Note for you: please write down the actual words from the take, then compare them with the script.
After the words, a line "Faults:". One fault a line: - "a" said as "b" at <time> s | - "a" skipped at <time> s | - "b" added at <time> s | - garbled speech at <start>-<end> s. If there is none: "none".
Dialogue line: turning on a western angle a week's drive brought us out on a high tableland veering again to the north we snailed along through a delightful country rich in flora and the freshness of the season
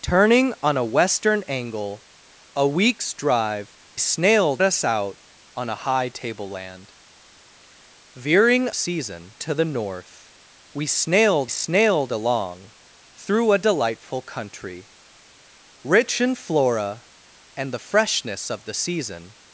turning on a western angle a week's drive snailed us out on a high tableland veering season to the north we snailed snailed along through a delightful country rich in flora and the freshness of the season
Faults:
- "brought" said as "snailed" at 4.0 s
- "again" said as "season" at 8.7 s
- "snailed" added at 11.5 s